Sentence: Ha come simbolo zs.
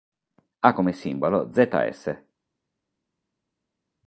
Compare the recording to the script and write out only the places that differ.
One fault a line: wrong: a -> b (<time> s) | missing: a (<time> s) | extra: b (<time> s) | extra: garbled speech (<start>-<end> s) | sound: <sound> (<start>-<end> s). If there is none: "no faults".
no faults